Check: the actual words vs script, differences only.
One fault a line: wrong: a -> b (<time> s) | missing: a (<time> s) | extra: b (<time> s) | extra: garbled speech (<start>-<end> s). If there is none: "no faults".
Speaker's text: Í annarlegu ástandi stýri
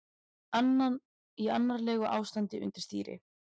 extra: undir (2.7 s)